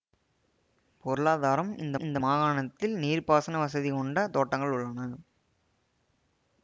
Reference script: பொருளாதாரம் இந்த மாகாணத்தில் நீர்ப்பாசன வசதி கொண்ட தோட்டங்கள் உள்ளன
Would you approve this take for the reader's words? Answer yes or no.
no